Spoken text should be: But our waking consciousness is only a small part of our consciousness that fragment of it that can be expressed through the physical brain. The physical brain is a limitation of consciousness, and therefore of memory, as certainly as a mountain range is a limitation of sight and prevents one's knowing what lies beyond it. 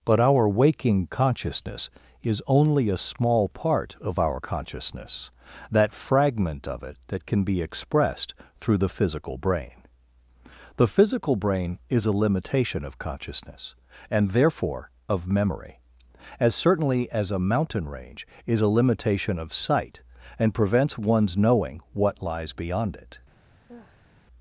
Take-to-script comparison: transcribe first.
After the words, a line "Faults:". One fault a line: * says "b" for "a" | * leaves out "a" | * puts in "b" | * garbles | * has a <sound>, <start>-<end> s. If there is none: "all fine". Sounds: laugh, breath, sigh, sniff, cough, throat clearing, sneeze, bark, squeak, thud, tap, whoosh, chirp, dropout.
But our waking consciousness is only a small part of our consciousness that fragment of it that can be expressed through the physical brain. The physical brain is a limitation of consciousness, and therefore of memory, as certainly as a mountain range is a limitation of sight and prevents one's knowing what lies beyond it.
Faults:
* has a sigh, 23.7-24.1 s